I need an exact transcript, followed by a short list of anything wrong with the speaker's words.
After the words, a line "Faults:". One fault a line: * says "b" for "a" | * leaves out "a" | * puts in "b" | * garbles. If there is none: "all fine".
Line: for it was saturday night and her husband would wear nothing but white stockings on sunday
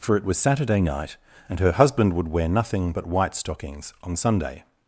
for it was saturday night and her husband would wear nothing but white stockings on sunday
Faults:
all fine